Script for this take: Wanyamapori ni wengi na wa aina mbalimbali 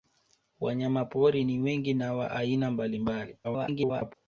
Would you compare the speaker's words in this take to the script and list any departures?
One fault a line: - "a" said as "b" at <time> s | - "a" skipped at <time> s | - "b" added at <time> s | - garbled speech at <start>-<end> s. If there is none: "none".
- garbled speech at 3.4-4.1 s